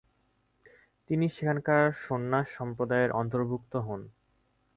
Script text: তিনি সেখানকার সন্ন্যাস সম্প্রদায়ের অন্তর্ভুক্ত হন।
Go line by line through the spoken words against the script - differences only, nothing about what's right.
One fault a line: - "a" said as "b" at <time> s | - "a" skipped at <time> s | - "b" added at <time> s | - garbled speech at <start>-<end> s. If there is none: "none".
none